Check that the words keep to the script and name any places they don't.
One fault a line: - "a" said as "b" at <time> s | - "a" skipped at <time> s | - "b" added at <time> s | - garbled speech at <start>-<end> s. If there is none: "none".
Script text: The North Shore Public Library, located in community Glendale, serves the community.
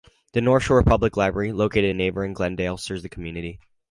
- "community" said as "neighboring" at 2.0 s